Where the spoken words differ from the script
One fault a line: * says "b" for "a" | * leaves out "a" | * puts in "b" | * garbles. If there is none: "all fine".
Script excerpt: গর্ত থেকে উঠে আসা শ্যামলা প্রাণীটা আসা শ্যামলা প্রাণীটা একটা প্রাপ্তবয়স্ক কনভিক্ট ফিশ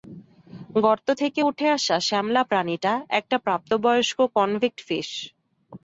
* leaves out "আসা শ্যামলা প্রাণীটা"